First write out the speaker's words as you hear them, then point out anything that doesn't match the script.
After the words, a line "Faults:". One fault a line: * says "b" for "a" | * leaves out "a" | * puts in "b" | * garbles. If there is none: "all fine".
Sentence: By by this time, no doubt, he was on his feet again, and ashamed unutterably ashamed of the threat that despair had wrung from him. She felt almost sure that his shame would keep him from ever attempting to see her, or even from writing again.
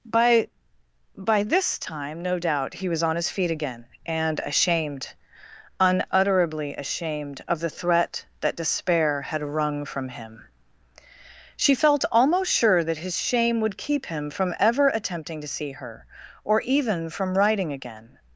By by this time, no doubt, he was on his feet again, and ashamed unutterably ashamed of the threat that despair had wrung from him. She felt almost sure that his shame would keep him from ever attempting to see her, or even from writing again.
Faults:
all fine